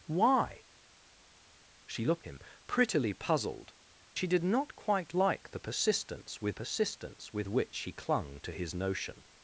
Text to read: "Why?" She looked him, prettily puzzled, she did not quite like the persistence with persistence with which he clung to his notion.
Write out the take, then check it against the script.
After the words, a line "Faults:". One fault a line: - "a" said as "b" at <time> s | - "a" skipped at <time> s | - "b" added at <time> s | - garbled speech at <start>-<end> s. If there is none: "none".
"Why?" She looked him, prettily puzzled, she did not quite like the persistence with persistence with which he clung to his notion.
Faults:
none